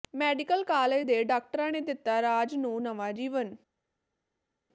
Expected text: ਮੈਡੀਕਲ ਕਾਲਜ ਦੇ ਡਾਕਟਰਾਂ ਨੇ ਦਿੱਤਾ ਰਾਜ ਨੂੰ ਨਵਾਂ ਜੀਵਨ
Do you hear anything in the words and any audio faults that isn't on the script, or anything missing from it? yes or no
no